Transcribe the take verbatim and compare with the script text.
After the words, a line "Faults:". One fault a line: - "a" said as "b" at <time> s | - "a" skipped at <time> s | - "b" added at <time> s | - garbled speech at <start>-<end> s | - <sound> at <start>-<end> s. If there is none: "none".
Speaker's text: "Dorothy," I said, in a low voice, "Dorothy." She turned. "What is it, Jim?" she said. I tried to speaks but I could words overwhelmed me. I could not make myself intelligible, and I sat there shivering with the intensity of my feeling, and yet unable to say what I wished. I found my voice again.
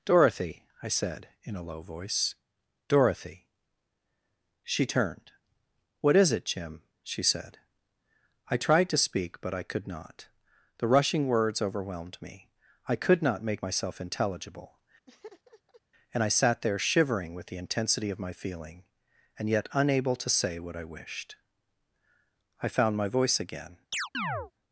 "Dorothy," I said, in a low voice, "Dorothy." She turned. "What is it, Jim?" she said. I tried to speak but I could not. The rushing words overwhelmed me. I could not make myself intelligible, and I sat there shivering with the intensity of my feeling, and yet unable to say what I wished. I found my voice again.
Faults:
- "speaks" said as "speak" at 9.1 s
- "not The rushing" added at 9.9 s
- laugh at 15.1-15.8 s
- chirp at 23.9-24.5 s